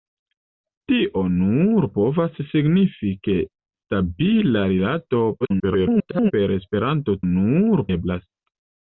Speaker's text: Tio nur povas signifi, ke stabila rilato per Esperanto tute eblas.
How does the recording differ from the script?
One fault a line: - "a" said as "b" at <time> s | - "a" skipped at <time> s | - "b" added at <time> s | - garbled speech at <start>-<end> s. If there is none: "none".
- garbled speech at 5.4-6.3 s
- "tute" said as "nur" at 7.3 s